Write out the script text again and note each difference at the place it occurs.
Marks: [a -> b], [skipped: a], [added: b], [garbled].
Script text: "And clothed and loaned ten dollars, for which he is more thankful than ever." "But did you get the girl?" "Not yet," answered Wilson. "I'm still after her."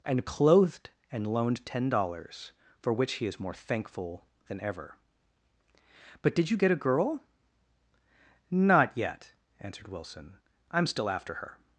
"And clothed and loaned ten dollars, for which he is more thankful than ever." "But did you get [the -> a] girl?" "Not yet," answered Wilson. "I'm still after her."